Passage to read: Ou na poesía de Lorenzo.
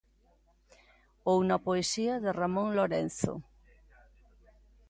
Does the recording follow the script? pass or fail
fail